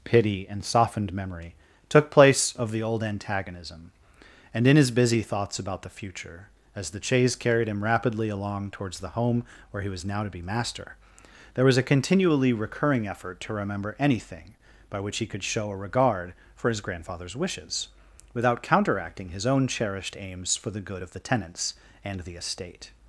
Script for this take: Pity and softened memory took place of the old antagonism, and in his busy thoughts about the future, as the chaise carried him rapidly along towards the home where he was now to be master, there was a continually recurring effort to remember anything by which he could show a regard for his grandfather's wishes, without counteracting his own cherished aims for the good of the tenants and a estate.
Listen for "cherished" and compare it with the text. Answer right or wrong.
right